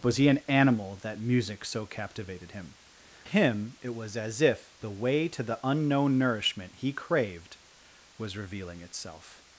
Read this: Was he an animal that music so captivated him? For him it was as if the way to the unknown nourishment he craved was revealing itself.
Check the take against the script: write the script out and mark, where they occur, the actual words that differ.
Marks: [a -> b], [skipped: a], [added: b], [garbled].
Was he an animal that music so captivated him? [skipped: For] him it was as if the way to the unknown nourishment he craved was revealing itself.